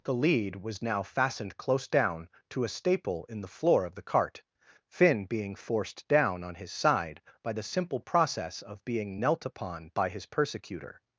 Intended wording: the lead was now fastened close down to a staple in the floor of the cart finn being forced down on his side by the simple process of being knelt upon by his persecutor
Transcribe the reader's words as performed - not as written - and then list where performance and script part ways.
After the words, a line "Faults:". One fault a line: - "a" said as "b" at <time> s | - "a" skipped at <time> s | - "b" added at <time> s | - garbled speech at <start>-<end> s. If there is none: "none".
the lead was now fastened close down to a staple in the floor of the cart finn being forced down on his side by the simple process of being knelt upon by his persecutor
Faults:
none